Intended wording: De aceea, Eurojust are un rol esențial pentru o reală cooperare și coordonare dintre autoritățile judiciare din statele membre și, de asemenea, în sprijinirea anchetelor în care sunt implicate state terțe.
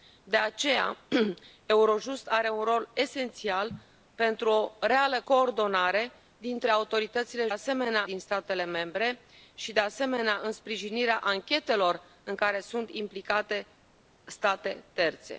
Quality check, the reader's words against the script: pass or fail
fail